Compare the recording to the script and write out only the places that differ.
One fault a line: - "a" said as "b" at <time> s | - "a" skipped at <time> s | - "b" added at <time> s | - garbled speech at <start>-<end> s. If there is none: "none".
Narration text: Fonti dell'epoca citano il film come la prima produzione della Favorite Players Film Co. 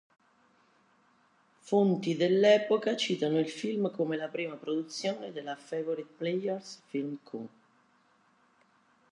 none